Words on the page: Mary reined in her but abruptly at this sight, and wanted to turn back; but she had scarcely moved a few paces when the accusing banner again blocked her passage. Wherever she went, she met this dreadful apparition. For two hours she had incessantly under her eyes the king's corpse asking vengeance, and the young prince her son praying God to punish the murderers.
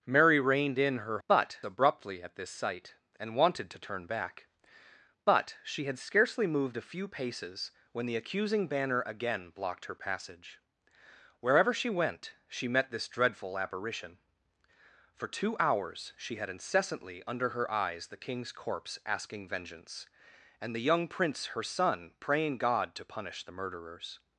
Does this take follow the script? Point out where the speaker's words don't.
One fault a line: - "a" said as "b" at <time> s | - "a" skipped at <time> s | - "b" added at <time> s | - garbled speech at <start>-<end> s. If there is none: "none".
none